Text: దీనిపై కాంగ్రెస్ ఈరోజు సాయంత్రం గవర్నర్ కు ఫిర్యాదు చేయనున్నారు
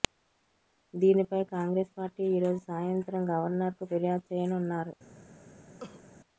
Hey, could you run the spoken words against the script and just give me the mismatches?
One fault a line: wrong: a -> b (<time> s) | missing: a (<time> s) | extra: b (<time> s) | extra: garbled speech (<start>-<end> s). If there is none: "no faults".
extra: పార్టీ (2.0 s)